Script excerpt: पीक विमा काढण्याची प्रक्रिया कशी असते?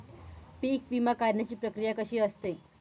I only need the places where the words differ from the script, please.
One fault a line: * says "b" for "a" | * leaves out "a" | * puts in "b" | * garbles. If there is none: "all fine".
all fine